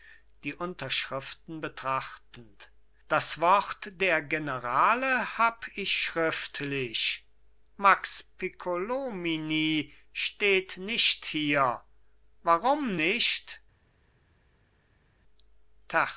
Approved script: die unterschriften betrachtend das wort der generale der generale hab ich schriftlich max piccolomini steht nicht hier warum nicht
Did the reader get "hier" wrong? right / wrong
right